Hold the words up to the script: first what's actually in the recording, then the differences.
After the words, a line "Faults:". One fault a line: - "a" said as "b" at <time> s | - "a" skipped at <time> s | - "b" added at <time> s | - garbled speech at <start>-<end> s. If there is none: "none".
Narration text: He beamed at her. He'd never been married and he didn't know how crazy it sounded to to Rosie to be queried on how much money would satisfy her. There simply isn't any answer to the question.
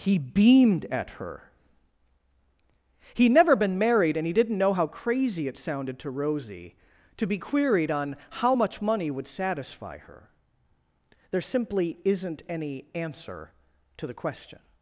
He beamed at her. He'd never been married and he didn't know how crazy it sounded to Rosie to be queried on how much money would satisfy her. There simply isn't any answer to the question.
Faults:
- "to" skipped at 6.1 s